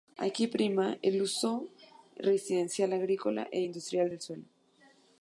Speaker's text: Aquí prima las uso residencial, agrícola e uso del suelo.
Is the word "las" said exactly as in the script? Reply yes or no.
no